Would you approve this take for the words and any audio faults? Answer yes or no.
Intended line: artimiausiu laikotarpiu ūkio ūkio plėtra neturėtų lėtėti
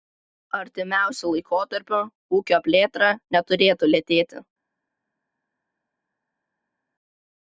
no